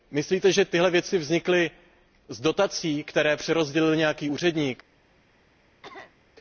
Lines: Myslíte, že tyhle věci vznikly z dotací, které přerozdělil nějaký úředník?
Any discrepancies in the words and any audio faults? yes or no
yes